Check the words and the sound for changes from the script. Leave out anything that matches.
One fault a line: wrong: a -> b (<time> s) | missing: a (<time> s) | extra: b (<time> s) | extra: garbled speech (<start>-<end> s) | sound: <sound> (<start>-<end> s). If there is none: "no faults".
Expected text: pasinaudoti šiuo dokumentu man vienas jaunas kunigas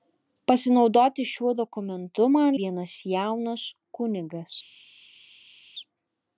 no faults